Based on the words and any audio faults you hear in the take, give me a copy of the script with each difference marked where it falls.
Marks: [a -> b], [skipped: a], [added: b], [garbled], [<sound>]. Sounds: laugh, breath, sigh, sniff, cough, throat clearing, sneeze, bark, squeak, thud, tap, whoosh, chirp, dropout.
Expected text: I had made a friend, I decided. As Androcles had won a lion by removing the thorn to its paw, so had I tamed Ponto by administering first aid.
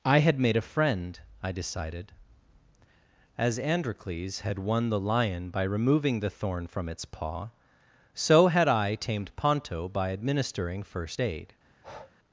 I had made a friend, I decided. As Androcles had won [a -> the] lion by removing the thorn [to -> from] its paw, so had I tamed Ponto by administering first aid. [breath]